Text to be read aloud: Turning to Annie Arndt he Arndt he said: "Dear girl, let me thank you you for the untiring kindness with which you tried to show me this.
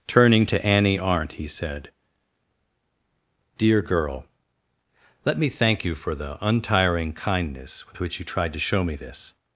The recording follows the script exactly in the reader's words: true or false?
false